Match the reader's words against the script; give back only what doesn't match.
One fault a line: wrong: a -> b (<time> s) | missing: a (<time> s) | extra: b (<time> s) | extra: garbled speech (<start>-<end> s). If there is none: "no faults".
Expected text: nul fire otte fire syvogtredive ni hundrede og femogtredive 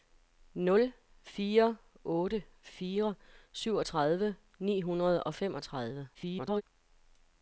extra: garbled speech (6.1-6.6 s)